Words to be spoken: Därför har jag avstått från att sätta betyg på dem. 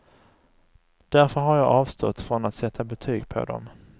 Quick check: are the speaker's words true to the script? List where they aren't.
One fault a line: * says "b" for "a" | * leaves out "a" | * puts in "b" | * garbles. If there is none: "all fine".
all fine